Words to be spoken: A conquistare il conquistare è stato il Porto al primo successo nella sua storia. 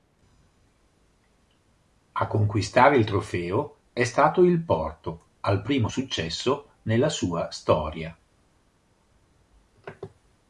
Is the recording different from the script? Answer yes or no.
yes